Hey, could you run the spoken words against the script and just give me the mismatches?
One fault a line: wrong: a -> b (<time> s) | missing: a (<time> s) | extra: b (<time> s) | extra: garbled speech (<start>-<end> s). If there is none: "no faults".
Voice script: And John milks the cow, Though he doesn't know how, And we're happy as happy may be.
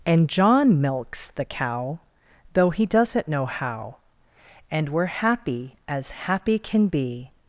wrong: may -> can (6.6 s)